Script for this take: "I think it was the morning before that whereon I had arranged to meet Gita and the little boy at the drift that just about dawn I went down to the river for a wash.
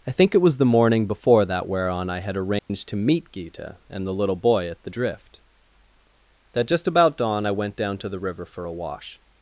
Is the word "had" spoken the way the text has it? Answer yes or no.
yes